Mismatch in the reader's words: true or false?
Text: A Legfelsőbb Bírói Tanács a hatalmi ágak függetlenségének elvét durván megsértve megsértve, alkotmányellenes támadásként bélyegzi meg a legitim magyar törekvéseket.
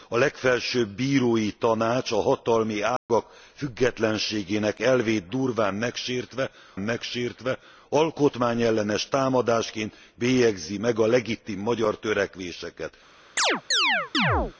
false